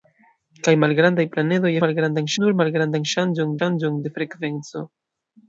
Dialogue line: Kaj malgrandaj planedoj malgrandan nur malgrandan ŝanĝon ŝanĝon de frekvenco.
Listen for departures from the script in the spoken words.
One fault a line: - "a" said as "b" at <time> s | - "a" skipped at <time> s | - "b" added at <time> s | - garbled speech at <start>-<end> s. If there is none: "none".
none